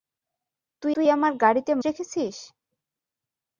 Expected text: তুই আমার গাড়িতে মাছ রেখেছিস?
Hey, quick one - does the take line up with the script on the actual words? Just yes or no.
no